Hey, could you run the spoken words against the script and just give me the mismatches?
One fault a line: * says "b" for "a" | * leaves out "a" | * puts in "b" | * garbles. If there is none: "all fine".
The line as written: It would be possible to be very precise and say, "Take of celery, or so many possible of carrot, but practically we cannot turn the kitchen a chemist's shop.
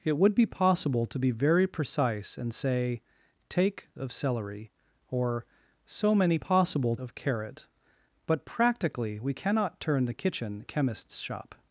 all fine